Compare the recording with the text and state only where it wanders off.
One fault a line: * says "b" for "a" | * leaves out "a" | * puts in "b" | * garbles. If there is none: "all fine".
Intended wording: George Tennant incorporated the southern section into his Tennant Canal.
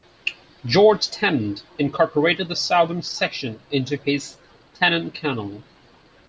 all fine